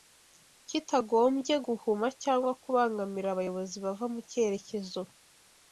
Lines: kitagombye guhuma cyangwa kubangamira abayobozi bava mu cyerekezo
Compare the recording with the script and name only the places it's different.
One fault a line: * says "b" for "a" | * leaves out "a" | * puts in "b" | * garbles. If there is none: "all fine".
all fine